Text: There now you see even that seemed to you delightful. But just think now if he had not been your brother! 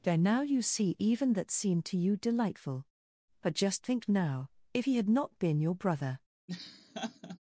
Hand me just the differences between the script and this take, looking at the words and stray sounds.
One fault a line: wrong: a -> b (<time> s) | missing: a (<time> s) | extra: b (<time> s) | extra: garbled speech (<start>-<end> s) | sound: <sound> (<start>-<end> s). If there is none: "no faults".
sound: laugh (6.5-7.4 s)